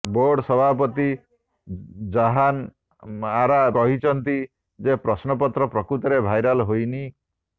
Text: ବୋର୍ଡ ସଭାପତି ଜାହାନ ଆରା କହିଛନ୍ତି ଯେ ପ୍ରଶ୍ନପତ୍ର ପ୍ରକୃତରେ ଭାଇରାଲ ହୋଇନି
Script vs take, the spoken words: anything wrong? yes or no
no